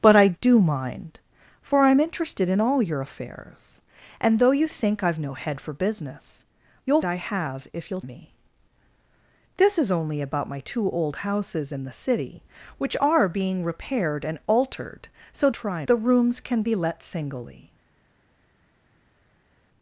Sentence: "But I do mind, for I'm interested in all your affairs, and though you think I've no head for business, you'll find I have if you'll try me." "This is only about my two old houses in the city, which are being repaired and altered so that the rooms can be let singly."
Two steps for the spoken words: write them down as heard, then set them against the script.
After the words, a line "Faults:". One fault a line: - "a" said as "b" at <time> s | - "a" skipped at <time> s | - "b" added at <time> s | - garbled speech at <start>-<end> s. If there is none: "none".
"But I do mind, for I'm interested in all your affairs, and though you think I've no head for business, you'll I have if you'll me." "This is only about my two old houses in the city, which are being repaired and altered so try the rooms can be let singly."
Faults:
- "find" skipped at 7.0 s
- "try" skipped at 8.0 s
- "that" said as "try" at 15.5 s